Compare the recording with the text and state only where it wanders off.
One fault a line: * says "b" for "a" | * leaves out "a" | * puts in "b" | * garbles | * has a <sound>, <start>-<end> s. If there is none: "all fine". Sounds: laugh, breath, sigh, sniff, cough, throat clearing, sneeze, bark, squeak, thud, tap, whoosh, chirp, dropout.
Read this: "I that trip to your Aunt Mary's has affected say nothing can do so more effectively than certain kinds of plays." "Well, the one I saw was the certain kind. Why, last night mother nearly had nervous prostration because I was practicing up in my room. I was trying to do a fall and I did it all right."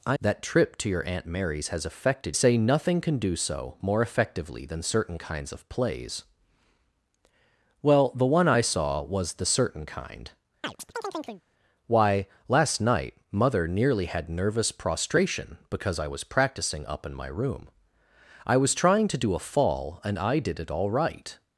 * has a chirp, 10.6-11.4 s